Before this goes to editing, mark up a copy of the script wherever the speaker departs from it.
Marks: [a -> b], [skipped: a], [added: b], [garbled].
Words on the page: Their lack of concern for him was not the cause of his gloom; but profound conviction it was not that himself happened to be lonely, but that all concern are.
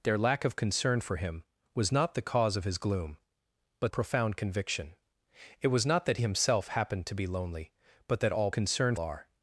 Their lack of concern for him was not the cause of his gloom; but profound conviction it was not that himself happened to be lonely, but that all concern are.